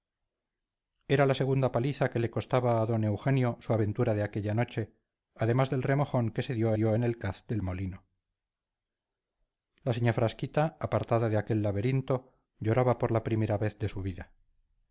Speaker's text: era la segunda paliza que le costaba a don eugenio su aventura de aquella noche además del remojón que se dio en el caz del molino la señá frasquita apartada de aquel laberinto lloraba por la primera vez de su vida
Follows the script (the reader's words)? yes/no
no